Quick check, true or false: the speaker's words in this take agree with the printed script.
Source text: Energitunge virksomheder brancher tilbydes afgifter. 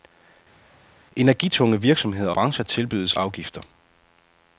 true